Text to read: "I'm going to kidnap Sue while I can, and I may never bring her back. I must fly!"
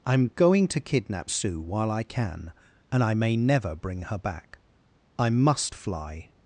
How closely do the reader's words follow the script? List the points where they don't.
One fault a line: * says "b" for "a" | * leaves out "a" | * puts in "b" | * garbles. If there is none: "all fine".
all fine